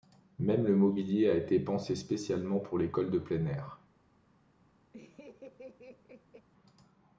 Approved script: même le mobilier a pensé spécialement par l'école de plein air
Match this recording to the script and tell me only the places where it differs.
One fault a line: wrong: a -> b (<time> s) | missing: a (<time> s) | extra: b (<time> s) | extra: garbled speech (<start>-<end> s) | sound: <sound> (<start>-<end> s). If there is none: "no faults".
extra: été (1.4 s)
wrong: par -> pour (2.6 s)
sound: laugh (4.9-6.5 s)